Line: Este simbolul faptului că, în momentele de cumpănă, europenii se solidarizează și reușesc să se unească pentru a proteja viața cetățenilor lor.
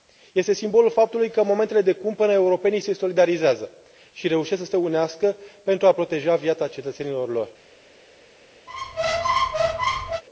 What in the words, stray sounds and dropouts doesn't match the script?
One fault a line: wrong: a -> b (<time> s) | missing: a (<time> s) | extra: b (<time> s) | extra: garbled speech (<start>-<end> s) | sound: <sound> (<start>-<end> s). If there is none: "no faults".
sound: squeak (8.7-10.2 s)